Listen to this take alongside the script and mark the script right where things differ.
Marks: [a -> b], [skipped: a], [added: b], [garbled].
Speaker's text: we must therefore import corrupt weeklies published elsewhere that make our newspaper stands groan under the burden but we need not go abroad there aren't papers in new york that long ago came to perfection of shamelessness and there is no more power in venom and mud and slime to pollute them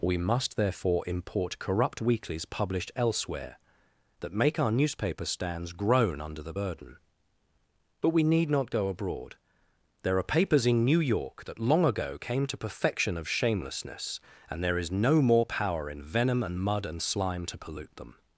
we must therefore import corrupt weeklies published elsewhere that make our newspaper stands groan under the burden but we need not go abroad there [aren't -> are] papers in new york that long ago came to perfection of shamelessness and there is no more power in venom and mud and slime to pollute them